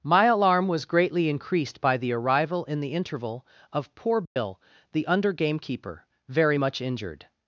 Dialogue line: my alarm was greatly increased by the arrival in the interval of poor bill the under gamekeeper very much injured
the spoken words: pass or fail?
pass